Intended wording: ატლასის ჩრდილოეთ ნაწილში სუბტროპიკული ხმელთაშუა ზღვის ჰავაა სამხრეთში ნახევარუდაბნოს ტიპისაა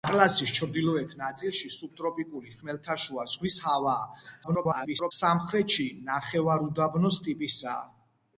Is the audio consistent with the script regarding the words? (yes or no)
no